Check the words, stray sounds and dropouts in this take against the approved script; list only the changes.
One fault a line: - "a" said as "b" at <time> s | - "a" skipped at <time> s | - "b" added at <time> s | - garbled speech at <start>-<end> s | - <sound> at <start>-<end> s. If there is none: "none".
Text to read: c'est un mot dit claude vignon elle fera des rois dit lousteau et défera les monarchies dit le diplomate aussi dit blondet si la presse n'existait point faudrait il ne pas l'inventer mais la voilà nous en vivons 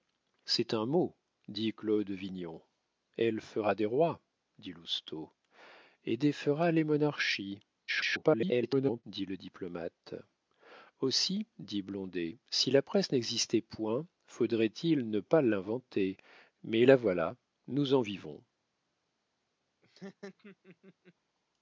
- garbled speech at 7.9-9.0 s
- laugh at 19.8-21.1 s